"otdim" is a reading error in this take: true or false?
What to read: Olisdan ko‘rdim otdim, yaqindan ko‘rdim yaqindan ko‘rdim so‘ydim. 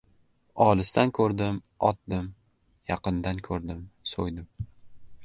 false